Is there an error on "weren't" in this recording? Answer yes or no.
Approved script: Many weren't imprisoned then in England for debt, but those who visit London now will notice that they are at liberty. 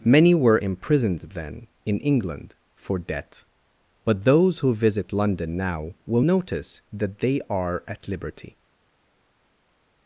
yes